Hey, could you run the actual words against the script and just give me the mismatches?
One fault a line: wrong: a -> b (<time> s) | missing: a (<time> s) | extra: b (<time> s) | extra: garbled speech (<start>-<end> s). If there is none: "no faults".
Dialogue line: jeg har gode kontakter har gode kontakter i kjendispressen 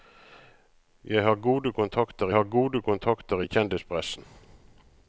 no faults